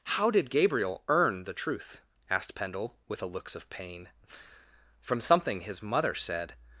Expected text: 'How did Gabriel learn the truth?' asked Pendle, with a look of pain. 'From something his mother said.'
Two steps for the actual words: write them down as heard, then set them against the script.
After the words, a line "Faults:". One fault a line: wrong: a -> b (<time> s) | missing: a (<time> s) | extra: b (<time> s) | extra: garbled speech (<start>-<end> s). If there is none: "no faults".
'How did Gabriel earn the truth?' asked Pendle, with a looks of pain. 'From something his mother said.'
Faults:
wrong: learn -> earn (1.1 s)
wrong: look -> looks (3.2 s)